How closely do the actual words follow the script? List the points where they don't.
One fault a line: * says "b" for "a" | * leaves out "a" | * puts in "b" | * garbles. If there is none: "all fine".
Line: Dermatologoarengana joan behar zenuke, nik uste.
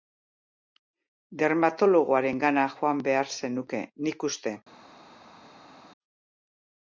all fine